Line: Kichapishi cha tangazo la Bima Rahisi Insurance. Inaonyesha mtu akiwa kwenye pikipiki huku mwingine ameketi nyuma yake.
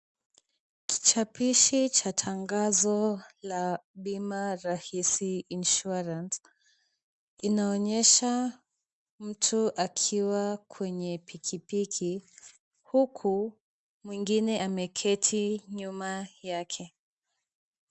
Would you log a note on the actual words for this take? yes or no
no